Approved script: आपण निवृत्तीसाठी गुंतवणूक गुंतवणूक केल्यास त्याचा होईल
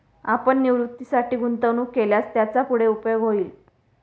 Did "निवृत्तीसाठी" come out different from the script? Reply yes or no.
no